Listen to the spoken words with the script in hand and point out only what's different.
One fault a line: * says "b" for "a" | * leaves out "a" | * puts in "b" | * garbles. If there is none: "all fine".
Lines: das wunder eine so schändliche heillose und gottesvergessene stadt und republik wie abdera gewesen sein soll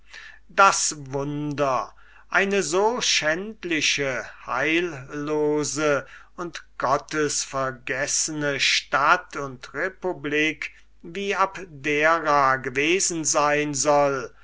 all fine